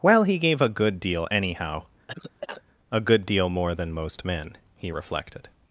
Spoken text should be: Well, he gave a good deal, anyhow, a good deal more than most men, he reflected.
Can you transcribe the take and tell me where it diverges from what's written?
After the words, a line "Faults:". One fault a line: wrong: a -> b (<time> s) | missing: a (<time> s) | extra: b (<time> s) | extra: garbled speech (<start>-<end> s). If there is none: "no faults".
Well, he gave a good deal, anyhow, a good deal more than most men, he reflected.
Faults:
no faults